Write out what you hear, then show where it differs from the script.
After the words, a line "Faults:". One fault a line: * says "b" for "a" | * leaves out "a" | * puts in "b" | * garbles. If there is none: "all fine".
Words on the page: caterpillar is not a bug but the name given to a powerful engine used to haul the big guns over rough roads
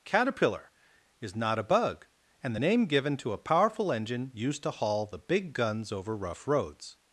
caterpillar is not a bug and the name given to a powerful engine used to haul the big guns over rough roads
Faults:
* says "and" for "but"